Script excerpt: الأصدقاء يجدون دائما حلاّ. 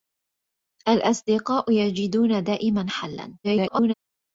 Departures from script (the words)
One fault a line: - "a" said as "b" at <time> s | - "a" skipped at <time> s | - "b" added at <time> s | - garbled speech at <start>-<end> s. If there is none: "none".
- garbled speech at 3.4-3.9 s